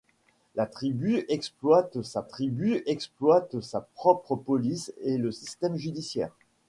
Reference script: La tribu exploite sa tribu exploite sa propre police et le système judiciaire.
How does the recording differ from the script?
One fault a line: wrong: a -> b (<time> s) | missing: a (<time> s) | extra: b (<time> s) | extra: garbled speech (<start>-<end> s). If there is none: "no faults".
no faults